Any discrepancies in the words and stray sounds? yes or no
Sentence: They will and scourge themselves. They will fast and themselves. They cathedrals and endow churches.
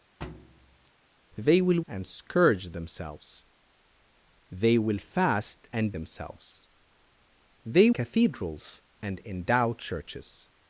yes